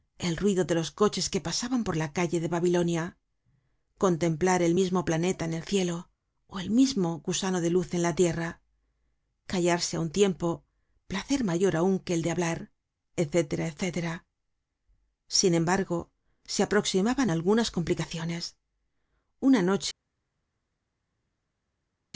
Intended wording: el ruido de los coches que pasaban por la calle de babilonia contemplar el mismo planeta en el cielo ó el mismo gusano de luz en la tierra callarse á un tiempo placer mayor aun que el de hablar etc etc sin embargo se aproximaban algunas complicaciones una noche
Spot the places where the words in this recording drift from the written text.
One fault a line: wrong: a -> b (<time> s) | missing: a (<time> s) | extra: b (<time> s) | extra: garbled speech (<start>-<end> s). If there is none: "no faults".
no faults